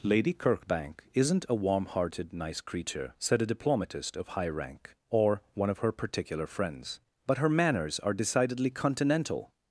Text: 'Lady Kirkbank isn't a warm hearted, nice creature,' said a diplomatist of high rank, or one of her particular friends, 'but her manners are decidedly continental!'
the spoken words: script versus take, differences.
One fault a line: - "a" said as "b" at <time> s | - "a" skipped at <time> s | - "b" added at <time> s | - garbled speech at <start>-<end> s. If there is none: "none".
none